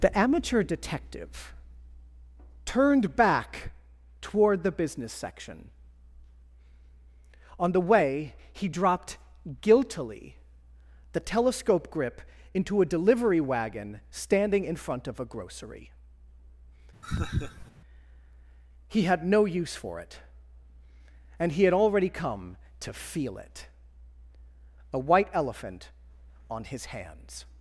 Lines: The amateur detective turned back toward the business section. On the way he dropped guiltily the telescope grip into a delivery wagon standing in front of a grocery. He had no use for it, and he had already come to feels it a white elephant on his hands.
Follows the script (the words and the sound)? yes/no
no